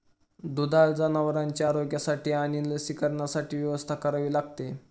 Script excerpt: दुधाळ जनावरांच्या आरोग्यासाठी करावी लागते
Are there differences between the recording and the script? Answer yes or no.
yes